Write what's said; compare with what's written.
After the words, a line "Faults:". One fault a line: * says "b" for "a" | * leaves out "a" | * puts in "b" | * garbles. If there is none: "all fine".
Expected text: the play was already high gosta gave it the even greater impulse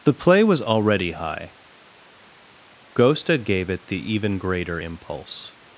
the play was already high gosta gave it the even greater impulse
Faults:
all fine